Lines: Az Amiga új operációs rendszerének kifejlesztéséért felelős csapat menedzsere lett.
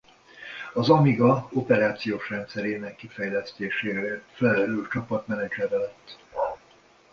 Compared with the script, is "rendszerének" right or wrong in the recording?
right